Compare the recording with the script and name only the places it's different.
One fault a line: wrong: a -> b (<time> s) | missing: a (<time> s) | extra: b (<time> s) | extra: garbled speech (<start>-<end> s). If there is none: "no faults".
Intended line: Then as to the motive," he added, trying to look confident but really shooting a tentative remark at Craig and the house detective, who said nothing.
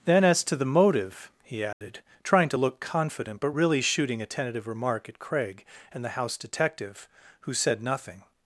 no faults